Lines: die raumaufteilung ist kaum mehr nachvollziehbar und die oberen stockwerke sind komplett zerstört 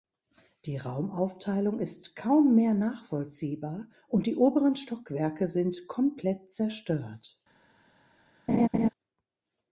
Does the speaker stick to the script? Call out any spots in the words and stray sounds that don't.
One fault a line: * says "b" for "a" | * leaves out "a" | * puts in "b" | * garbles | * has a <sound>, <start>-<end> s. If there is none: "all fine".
* has a laugh, 8.5-8.9 s